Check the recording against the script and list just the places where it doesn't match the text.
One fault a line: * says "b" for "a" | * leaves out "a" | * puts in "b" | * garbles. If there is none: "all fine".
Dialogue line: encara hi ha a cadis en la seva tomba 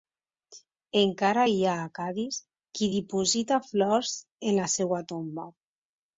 * puts in "qui diposita flors"